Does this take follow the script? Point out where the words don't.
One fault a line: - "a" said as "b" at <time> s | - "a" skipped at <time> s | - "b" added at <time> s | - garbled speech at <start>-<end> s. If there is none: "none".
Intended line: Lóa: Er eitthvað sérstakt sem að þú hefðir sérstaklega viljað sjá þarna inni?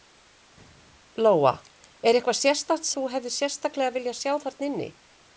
- "sem" skipped at 2.9 s